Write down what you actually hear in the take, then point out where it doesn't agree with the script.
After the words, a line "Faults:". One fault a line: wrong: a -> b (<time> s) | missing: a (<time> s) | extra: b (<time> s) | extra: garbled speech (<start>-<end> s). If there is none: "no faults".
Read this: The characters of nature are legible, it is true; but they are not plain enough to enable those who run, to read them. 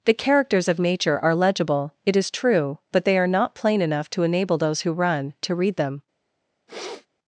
The characters of nature are legible, it is true; but they are not plain enough to enable those who run, to read them.
Faults:
no faults